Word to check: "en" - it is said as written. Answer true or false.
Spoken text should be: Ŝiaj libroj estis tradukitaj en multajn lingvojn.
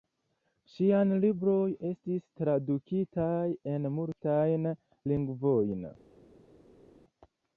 true